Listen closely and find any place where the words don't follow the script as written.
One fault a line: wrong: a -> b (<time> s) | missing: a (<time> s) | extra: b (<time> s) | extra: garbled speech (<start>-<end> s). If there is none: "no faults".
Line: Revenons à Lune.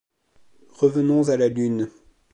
extra: la (1.4 s)